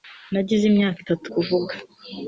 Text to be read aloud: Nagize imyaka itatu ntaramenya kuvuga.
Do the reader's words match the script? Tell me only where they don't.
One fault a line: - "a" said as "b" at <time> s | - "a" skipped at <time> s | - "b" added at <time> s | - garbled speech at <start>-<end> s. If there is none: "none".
- "ntaramenya" skipped at 1.3 s